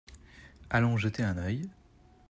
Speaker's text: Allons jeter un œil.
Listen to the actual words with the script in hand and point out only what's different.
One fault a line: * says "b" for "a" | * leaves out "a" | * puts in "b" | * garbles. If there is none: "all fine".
all fine